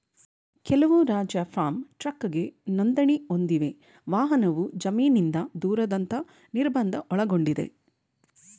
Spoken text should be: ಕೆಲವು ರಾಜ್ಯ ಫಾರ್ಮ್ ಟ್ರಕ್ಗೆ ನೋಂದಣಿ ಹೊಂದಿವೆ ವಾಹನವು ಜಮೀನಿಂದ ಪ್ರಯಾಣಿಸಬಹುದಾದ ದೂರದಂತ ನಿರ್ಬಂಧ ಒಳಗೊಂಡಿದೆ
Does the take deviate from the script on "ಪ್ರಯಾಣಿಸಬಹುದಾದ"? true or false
true